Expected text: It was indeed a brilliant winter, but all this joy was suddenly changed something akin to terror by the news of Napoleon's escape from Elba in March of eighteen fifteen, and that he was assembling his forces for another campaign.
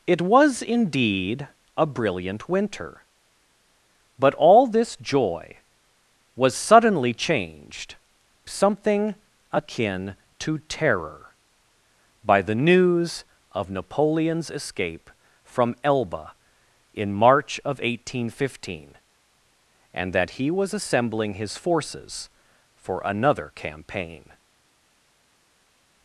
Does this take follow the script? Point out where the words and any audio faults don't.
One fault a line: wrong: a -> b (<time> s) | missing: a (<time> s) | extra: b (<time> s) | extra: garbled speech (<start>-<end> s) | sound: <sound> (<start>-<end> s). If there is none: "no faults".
no faults